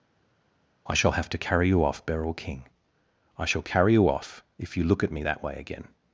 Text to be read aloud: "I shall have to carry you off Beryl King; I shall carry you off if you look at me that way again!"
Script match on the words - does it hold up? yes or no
yes